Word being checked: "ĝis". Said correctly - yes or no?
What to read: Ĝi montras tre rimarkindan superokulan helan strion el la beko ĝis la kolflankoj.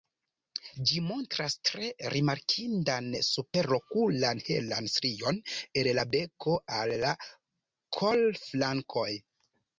no